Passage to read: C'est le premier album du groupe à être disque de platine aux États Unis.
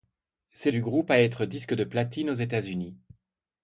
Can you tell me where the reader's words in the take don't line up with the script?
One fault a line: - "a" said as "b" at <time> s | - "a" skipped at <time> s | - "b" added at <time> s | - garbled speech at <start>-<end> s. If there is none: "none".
- "le premier album" skipped at 0.7 s